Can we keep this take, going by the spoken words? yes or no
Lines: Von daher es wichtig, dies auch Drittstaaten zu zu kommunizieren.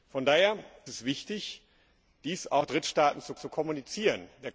yes